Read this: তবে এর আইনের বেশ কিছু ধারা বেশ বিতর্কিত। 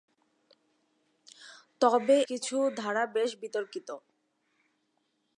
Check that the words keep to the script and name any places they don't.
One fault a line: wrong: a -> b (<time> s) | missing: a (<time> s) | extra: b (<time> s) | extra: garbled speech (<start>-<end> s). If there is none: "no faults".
missing: এর আইনের বেশ (2.2 s)